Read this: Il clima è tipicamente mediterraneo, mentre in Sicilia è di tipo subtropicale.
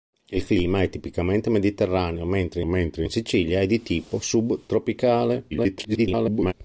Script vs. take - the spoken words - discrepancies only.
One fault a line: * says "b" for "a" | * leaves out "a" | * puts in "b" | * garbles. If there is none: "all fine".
* puts in "mentre"
* garbles